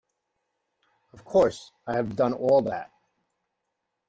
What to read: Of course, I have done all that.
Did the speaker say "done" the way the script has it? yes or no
yes